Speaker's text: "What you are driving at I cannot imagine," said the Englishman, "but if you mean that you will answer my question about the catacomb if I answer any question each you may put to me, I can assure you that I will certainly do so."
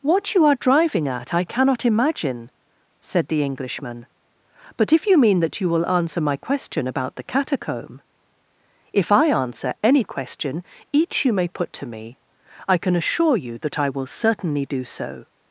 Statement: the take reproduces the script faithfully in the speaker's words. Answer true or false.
true